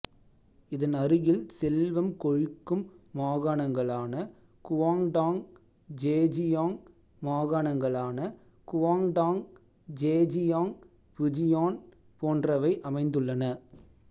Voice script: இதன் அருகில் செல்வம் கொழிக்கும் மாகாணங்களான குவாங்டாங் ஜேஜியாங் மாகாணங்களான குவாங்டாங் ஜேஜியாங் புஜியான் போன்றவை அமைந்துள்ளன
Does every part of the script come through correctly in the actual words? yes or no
yes